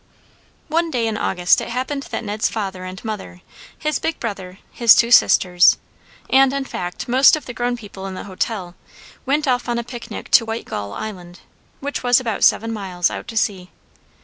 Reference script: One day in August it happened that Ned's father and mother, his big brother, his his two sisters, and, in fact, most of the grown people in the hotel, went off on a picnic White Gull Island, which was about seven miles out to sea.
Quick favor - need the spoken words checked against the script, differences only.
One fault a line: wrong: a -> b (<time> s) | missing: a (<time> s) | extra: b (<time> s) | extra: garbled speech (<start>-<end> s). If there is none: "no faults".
missing: his (5.0 s)
extra: to (10.3 s)